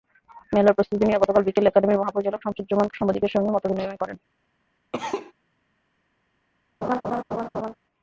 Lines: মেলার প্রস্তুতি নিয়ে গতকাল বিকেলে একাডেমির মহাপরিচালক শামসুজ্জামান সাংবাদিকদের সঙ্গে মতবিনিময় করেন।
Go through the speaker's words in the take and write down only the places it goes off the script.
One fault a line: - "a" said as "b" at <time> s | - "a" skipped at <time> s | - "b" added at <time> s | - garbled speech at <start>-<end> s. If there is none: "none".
none